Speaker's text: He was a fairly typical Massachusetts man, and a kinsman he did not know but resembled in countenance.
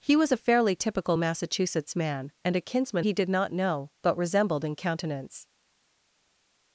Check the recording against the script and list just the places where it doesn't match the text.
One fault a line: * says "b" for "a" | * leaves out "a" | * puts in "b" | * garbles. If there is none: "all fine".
all fine